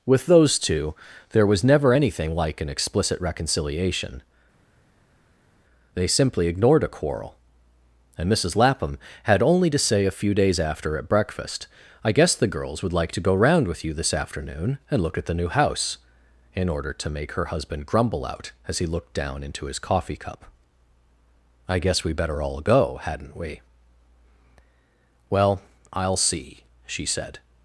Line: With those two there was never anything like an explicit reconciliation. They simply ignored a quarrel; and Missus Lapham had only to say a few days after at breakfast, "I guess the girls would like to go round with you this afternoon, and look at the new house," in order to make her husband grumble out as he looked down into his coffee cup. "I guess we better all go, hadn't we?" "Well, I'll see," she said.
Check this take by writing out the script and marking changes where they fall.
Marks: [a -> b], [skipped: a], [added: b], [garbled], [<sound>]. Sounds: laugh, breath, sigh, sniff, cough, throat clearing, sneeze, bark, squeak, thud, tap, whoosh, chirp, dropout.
With those two there was never anything like an explicit reconciliation. They simply ignored a quarrel; and Missus Lapham had only to say a few days after at breakfast, "I guess the girls would like to go round with you this afternoon, and look at the new house," in order to make her husband grumble out as he looked down into his coffee cup. "I guess we better all go, hadn't we?" "Well, I'll see," she said.